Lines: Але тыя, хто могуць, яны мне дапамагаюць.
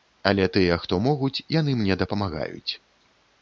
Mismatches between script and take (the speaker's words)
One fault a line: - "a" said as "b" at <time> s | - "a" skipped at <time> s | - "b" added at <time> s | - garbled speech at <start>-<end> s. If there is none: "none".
none